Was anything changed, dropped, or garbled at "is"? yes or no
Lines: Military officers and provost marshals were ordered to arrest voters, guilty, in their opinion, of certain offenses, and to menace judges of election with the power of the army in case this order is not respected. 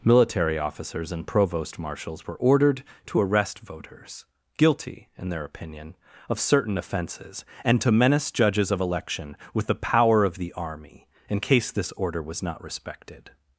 yes